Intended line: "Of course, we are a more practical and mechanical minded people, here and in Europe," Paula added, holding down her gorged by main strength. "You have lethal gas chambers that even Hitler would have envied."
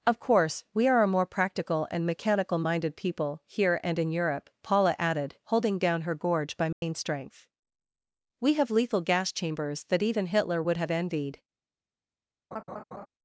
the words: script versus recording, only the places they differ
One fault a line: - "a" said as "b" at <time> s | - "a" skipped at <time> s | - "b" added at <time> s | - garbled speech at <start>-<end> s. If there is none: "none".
- "gorged" said as "gorge" at 6.2 s
- "You" said as "We" at 8.4 s